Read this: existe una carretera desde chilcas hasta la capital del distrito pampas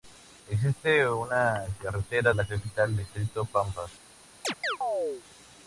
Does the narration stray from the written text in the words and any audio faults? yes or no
yes